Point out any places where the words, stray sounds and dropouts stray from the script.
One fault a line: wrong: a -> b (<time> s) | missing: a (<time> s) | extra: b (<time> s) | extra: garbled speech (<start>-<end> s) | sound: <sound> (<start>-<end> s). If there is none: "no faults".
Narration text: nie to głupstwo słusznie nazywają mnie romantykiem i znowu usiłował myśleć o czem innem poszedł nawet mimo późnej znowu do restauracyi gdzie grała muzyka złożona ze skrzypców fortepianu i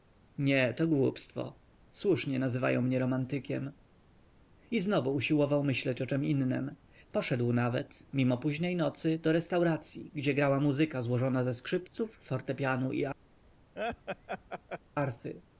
wrong: znowu -> nocy (8.8 s)
sound: laugh (13.8-14.8 s)